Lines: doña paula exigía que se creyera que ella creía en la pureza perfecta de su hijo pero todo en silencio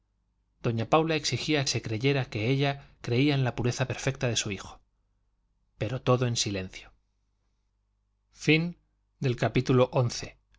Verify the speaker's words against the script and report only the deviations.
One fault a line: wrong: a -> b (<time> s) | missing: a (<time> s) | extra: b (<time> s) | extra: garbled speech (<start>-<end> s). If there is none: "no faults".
missing: que (1.7 s)